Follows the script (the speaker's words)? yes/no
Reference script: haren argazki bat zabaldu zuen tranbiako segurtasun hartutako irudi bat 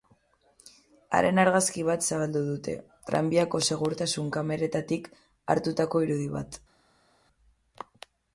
no